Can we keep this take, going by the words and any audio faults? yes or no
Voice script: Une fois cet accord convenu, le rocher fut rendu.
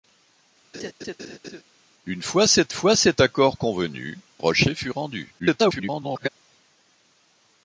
no